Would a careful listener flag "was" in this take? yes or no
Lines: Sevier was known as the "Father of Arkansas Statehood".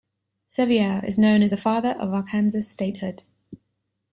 yes